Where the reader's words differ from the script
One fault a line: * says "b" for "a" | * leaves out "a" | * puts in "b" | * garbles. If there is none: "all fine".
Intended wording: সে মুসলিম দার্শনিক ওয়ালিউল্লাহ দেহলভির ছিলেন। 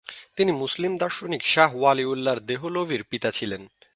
* says "তিনি" for "সে"
* puts in "শাহ"
* puts in "পিতা"